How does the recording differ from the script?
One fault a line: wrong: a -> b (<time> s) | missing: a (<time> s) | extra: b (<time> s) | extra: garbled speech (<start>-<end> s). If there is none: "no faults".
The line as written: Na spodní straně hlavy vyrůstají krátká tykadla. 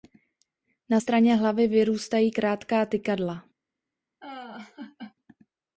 missing: spodní (1.0 s)